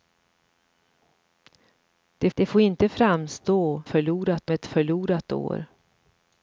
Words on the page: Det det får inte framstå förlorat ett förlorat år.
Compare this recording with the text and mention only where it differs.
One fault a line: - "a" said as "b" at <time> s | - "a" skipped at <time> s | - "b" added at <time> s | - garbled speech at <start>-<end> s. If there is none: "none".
none